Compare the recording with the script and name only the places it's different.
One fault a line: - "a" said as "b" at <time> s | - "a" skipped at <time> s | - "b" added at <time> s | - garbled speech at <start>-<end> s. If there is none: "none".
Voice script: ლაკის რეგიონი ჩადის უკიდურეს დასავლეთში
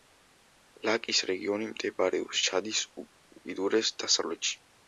- "მდებარეობს" added at 1.7 s